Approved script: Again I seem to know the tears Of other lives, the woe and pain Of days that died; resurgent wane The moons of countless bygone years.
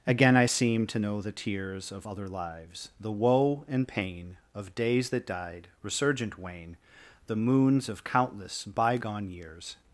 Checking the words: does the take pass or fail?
pass